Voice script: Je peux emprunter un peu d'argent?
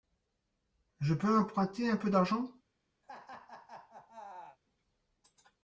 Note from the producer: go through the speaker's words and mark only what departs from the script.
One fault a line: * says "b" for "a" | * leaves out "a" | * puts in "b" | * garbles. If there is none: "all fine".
all fine